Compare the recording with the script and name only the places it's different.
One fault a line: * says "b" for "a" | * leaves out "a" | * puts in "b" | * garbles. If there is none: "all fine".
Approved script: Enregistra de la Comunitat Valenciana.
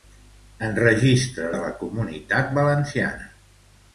all fine